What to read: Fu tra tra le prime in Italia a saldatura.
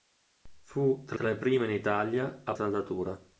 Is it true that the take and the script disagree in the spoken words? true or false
false